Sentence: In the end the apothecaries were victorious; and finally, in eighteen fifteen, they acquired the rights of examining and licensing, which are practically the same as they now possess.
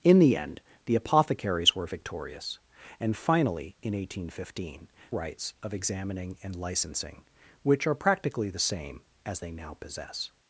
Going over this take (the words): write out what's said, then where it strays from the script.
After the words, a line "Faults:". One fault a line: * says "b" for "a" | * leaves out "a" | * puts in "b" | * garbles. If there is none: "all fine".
In the end the apothecaries were victorious; and finally, in eighteen fifteen, rights of examining and licensing, which are practically the same as they now possess.
Faults:
* leaves out "they acquired the"